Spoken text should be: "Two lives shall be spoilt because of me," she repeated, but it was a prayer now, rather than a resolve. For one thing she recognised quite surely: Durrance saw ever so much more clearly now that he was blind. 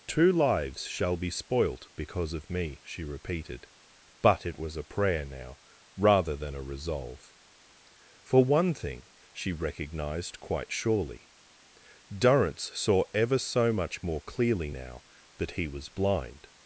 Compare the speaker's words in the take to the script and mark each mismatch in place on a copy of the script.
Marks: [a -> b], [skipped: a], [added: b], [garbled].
"Two lives shall be spoilt because of me," she repeated, but it was a prayer now, rather than a resolve. For one thing she recognised quite surely: Durrance saw ever so much more clearly now that he was blind.